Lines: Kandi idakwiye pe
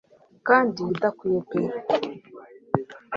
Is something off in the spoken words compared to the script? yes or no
no